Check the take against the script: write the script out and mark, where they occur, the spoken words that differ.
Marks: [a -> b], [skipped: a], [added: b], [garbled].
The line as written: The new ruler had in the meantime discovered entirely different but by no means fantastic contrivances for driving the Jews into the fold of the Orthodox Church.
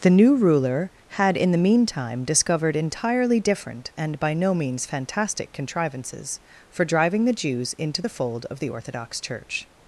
The new ruler had in the meantime discovered entirely different [but -> and] by no means fantastic contrivances for driving the Jews into the fold of the Orthodox Church.